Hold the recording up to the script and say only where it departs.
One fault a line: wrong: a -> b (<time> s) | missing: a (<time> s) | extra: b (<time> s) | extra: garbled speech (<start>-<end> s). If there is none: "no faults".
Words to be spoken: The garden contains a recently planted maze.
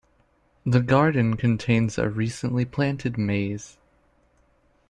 no faults